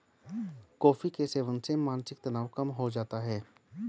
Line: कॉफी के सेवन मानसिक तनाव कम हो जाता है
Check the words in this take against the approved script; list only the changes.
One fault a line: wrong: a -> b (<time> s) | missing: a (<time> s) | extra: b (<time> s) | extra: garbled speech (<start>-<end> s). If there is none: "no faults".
extra: से (1.6 s)